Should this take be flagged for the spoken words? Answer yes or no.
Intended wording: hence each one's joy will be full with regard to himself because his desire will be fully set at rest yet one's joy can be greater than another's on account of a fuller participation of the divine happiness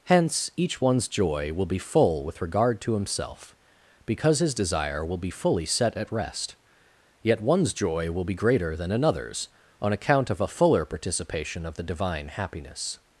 yes